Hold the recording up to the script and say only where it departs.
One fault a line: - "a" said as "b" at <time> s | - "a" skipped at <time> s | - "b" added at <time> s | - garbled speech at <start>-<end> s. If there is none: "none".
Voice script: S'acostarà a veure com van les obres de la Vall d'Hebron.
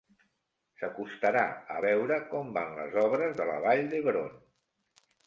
none